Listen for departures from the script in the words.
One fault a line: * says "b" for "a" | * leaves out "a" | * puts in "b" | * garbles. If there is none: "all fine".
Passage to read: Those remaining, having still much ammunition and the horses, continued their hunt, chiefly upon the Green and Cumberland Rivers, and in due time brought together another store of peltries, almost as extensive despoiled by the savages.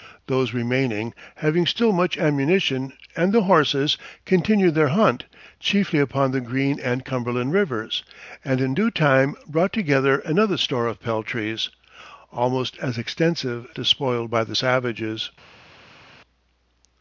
all fine